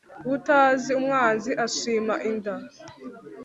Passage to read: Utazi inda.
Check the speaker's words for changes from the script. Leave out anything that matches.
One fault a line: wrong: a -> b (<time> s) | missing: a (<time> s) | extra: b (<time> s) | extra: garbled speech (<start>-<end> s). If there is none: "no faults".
extra: umwanzi ashima (1.0 s)